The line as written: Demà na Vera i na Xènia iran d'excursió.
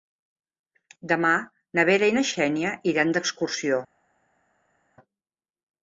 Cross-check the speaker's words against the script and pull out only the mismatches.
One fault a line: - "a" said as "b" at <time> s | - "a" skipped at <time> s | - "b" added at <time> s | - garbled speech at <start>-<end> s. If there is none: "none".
none